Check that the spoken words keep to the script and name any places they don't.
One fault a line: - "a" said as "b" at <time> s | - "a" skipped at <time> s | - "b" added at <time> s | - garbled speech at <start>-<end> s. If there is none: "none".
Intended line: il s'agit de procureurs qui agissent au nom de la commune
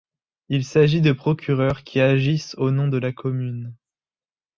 none